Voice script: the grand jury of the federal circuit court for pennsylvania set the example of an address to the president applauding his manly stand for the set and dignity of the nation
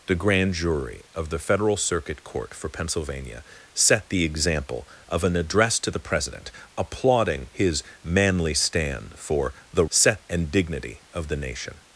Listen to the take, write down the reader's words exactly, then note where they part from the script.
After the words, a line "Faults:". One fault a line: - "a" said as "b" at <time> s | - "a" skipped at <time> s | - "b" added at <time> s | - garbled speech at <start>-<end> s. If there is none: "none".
the grand jury of the federal circuit court for pennsylvania set the example of an address to the president applauding his manly stand for the set and dignity of the nation
Faults:
none